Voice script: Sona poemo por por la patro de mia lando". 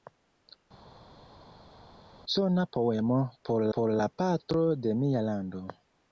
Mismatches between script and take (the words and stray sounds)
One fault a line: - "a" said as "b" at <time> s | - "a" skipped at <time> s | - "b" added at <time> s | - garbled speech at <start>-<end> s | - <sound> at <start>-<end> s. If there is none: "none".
none